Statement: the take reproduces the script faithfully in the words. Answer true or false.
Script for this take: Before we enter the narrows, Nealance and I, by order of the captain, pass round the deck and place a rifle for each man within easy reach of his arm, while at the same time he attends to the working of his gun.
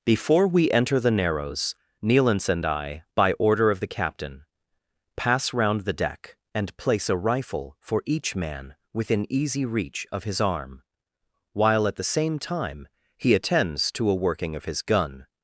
false